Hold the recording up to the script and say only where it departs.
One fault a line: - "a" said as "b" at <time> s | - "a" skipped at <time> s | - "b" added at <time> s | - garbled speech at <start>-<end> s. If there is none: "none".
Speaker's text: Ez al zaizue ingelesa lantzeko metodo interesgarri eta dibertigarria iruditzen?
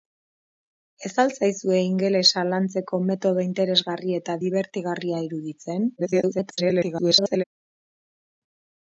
- garbled speech at 6.0-7.4 s